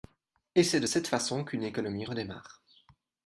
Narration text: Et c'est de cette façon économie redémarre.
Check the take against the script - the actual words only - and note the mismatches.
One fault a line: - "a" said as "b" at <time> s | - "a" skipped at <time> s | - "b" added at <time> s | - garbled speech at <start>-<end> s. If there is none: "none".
- "qu'une" added at 1.4 s